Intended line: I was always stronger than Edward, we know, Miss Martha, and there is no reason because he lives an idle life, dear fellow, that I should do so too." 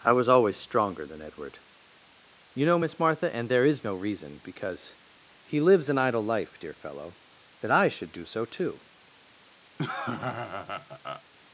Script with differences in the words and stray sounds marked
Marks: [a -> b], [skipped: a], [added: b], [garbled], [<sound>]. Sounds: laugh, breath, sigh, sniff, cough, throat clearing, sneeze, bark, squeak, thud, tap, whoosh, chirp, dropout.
I was always stronger than Edward, [we -> you] know, Miss Martha, and there is no reason because he lives an idle life, dear fellow, that I should do so too." [laugh]